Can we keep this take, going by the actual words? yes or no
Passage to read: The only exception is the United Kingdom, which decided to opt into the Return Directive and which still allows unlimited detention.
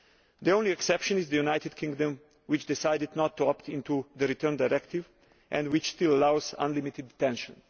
no